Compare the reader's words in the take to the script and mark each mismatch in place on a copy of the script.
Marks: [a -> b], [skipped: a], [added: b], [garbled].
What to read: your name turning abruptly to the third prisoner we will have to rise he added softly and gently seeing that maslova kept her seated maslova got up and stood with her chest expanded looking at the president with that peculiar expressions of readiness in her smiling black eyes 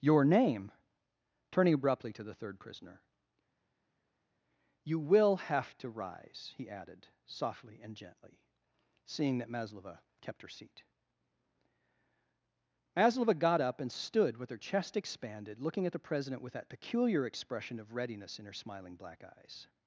your name turning abruptly to the third prisoner [we -> you] will have to rise he added softly and gently seeing that maslova kept her [seated -> seat] maslova got up and stood with her chest expanded looking at the president with that peculiar [expressions -> expression] of readiness in her smiling black eyes